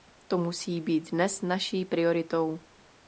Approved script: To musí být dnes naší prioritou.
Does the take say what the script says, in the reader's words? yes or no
yes